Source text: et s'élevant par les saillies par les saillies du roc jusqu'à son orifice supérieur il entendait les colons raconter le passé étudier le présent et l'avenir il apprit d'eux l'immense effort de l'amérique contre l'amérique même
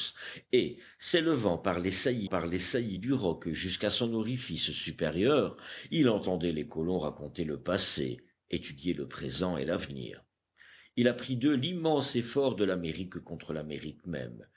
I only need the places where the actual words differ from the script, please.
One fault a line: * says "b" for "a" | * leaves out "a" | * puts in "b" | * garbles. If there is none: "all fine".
all fine